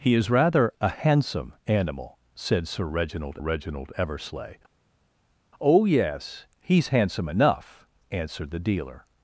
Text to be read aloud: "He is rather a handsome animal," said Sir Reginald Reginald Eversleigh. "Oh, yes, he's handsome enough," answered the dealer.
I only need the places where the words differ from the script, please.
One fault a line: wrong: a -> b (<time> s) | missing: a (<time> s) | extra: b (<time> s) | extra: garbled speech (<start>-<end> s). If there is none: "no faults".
no faults